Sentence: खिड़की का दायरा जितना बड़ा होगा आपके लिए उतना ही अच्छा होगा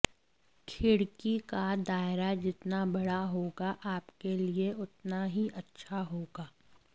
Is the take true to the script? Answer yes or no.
yes